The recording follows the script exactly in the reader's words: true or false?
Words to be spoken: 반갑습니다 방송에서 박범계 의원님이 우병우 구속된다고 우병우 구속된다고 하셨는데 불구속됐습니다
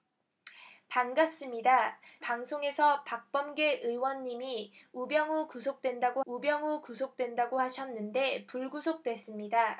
true